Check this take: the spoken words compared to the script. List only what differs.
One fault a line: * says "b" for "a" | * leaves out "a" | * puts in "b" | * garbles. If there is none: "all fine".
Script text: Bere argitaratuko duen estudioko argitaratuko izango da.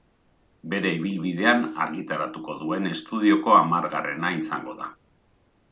* puts in "ibilbidean"
* says "hamargarrena" for "argitaratuko"